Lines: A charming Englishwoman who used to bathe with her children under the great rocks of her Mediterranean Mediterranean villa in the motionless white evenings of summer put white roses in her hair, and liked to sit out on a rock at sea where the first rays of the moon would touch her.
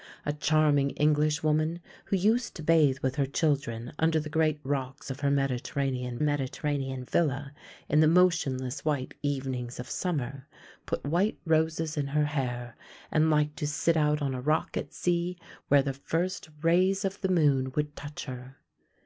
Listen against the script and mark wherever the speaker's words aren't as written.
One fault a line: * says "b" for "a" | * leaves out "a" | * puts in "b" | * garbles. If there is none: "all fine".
all fine